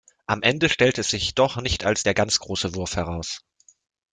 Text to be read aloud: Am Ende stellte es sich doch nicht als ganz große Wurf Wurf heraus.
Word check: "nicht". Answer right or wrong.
right